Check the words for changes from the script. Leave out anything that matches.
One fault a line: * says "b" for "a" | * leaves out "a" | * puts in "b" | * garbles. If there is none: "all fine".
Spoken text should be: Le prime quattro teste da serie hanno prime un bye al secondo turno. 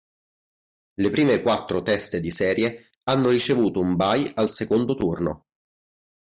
* says "di" for "da"
* says "ricevuto" for "prime"